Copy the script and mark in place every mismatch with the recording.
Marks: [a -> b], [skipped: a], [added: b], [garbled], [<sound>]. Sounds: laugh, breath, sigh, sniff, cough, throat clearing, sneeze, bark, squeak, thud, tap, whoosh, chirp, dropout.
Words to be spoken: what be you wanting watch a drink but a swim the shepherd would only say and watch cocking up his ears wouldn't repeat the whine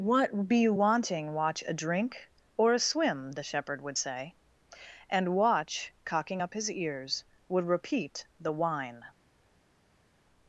what be you wanting watch a drink [but -> or] a swim the shepherd would [skipped: only] say and watch cocking up his ears [wouldn't -> would] repeat the whine